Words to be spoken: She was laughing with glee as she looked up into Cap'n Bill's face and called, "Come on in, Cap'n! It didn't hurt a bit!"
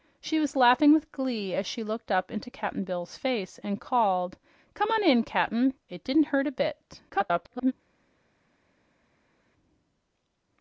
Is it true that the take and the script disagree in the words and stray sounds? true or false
true